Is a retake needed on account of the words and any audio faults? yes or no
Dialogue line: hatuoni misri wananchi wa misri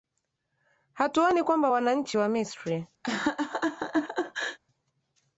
yes